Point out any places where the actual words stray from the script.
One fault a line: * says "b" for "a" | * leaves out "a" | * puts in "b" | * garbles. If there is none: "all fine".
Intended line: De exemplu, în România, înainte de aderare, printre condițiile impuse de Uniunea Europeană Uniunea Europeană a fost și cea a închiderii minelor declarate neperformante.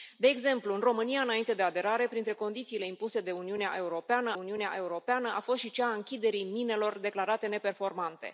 all fine